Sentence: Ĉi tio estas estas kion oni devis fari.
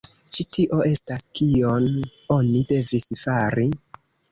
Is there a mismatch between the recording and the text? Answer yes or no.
yes